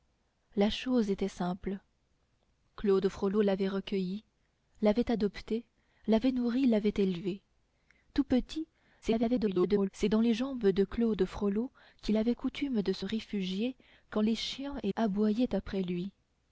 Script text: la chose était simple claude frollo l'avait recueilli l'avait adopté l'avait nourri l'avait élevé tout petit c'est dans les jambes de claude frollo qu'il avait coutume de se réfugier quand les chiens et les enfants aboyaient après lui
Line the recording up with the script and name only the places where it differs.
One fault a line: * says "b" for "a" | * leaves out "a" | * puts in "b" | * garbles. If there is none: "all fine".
* garbles
* leaves out "les enfants"